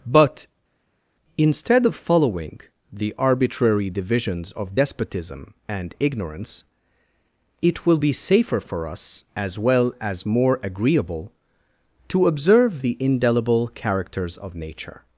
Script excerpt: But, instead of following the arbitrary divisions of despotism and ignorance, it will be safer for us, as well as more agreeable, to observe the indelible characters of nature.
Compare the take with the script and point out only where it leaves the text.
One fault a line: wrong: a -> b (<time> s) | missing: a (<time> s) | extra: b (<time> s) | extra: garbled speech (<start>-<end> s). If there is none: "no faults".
no faults